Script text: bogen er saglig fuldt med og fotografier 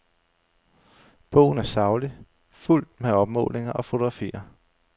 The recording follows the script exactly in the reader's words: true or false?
false